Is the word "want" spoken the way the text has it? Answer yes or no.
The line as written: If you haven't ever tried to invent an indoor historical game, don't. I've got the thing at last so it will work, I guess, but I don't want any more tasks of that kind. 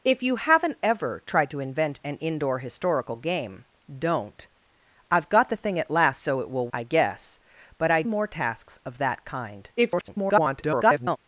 no